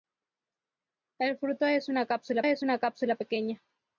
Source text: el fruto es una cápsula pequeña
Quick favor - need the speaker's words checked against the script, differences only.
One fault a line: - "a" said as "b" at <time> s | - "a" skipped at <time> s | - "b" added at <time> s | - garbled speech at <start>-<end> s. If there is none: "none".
- "es una cápsula" added at 2.4 s